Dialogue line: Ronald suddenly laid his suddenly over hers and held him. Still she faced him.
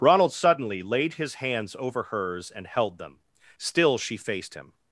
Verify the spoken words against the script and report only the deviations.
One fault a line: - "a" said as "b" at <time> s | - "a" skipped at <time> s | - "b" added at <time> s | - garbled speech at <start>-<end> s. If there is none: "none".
- "suddenly" said as "hands" at 1.4 s
- "him" said as "them" at 3.0 s